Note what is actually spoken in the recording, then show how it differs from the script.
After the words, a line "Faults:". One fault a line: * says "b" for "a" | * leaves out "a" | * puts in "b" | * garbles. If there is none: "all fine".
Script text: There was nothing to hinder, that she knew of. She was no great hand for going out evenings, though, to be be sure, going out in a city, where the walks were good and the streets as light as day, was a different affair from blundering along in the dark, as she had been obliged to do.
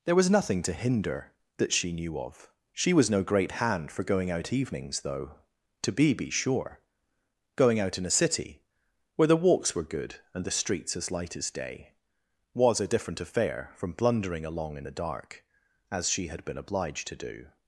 There was nothing to hinder, that she knew of. She was no great hand for going out evenings, though, to be be sure, going out in a city, where the walks were good and the streets as light as day, was a different affair from blundering along in the dark, as she had been obliged to do.
Faults:
all fine